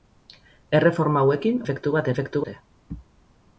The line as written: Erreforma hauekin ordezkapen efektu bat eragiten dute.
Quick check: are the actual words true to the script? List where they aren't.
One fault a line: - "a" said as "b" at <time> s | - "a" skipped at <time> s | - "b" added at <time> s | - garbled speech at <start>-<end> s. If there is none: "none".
- "ordezkapen" skipped at 1.6 s
- "eragiten" said as "efektu" at 2.1 s